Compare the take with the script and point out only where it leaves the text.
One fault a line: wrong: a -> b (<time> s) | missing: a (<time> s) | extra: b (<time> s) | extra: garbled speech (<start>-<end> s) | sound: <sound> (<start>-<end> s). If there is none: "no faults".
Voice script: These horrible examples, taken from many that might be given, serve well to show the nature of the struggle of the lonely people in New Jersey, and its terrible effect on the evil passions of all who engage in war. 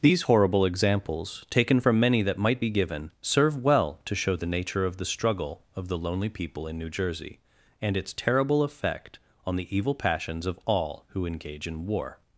no faults